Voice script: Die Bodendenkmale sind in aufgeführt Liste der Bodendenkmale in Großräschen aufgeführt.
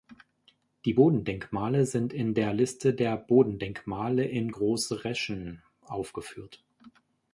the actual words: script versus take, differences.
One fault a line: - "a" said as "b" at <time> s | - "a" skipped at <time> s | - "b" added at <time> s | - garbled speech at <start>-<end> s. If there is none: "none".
- "aufgeführt" said as "der" at 2.3 s